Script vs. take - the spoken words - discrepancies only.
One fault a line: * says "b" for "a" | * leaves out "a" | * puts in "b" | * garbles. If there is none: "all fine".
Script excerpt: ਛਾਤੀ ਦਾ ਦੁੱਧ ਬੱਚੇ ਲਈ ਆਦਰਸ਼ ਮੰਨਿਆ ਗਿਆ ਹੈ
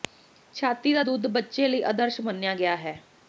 all fine